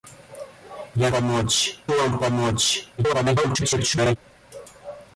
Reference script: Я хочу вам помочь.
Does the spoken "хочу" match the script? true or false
false